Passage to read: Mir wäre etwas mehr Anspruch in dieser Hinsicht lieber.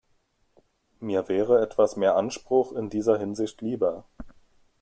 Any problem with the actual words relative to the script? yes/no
no